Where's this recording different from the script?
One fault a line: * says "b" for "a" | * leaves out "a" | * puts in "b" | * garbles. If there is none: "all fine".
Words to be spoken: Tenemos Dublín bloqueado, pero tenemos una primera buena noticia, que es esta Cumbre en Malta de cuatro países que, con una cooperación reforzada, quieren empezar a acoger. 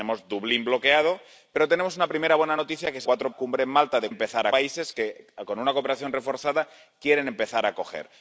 * says "cuatro" for "esta"
* says "empezar" for "cuatro"